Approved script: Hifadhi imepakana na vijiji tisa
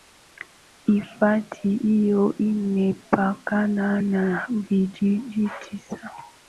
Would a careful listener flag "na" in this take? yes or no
no